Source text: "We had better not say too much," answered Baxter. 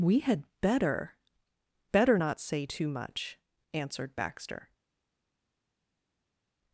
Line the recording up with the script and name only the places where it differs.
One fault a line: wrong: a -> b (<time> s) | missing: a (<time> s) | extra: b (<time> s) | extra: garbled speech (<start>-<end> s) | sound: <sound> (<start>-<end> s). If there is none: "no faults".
extra: better (1.9 s)